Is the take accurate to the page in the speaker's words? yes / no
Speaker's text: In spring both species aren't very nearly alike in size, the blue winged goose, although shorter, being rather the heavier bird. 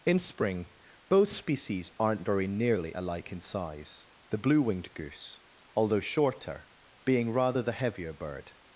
yes